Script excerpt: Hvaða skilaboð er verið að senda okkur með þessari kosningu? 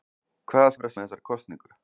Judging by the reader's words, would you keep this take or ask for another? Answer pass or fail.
fail